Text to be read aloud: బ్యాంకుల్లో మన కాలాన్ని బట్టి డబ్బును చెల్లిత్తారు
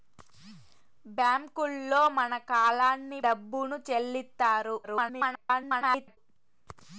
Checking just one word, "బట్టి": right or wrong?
wrong